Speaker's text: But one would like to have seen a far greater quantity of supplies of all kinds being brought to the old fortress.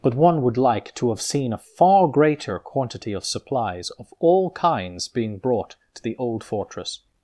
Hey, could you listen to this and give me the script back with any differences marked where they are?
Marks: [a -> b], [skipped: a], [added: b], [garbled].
But one would like to have seen a far greater quantity of supplies of all kinds being brought to the old fortress.